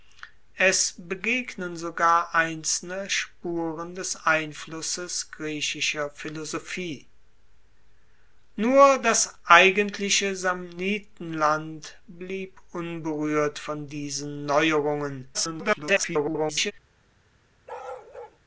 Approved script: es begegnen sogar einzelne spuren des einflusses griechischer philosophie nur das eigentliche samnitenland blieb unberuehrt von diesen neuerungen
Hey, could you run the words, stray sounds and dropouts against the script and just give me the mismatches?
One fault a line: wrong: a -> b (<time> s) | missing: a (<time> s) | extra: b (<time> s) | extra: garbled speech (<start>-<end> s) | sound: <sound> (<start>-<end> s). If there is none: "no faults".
extra: garbled speech (15.3-16.7 s)
sound: bark (17.7-18.4 s)